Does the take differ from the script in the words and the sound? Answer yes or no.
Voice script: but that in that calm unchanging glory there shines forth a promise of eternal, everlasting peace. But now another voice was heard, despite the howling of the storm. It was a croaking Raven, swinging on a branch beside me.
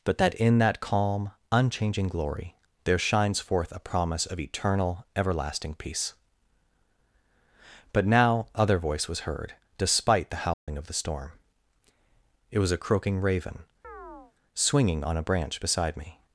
yes